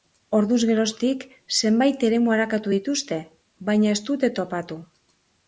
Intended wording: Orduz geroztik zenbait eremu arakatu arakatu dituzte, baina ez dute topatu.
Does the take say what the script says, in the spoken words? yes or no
no